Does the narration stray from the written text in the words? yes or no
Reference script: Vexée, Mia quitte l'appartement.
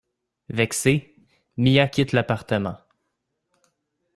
no